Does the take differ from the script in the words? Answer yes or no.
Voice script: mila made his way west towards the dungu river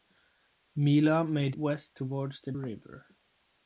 yes